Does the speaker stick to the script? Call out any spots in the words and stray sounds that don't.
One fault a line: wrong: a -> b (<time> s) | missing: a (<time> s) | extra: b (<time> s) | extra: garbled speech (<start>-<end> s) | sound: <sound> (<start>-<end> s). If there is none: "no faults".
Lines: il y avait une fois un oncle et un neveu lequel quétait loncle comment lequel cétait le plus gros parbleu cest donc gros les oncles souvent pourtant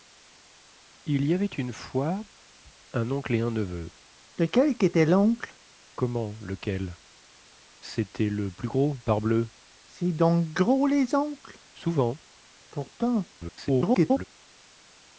extra: garbled speech (13.3-14.3 s)